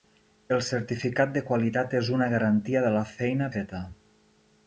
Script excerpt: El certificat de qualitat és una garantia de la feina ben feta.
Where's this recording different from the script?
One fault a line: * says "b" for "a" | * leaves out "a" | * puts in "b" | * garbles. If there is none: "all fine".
* leaves out "ben"